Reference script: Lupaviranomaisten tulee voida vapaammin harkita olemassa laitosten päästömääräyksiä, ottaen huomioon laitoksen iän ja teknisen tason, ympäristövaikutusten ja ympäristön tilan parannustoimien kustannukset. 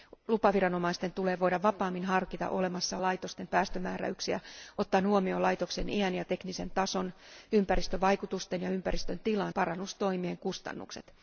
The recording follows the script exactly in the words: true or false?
true